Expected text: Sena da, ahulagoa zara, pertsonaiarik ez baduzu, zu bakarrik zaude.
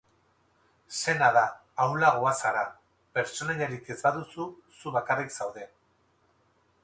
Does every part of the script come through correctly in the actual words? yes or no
yes